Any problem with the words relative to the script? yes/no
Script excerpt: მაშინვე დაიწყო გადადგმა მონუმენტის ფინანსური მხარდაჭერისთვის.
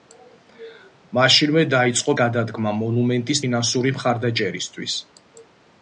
no